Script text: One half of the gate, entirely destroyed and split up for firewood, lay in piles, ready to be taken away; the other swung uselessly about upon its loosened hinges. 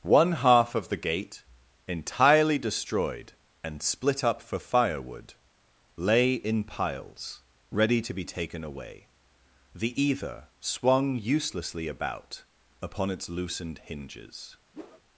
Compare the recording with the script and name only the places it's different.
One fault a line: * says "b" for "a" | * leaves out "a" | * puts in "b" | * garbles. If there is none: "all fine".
* says "either" for "other"